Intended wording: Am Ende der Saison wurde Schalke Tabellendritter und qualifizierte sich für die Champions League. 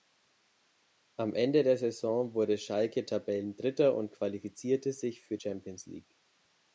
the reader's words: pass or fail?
fail